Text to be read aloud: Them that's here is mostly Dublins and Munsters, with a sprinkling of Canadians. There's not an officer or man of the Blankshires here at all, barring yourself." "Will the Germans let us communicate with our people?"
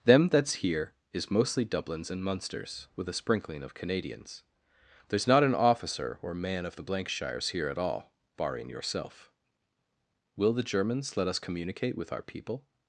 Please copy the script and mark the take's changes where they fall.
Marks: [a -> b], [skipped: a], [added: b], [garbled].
Them that's here is mostly Dublins and Munsters, with a sprinkling of Canadians. There's not an officer or man of the Blankshires here at all, barring yourself." "Will the Germans let us communicate with our people?"